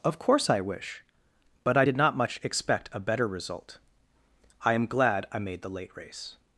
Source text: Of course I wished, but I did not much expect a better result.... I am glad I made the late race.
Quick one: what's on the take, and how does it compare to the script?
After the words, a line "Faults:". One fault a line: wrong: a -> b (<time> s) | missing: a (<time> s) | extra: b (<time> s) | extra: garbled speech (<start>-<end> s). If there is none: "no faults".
Of course I wish, but I did not much expect a better result.... I am glad I made the late race.
Faults:
wrong: wished -> wish (0.6 s)